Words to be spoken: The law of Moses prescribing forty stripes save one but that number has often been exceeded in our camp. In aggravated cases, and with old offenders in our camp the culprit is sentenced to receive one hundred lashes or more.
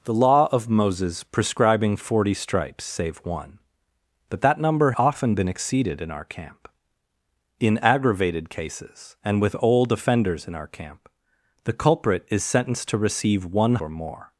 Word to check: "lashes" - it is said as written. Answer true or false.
false